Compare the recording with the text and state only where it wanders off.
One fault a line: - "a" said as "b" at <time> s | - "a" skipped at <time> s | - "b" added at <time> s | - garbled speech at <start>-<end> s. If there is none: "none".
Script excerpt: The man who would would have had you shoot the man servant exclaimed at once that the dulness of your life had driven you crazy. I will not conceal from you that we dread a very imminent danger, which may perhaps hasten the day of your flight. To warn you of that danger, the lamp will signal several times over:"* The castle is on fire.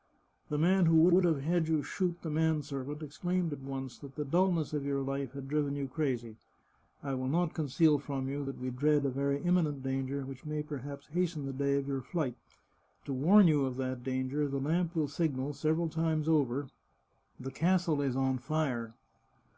none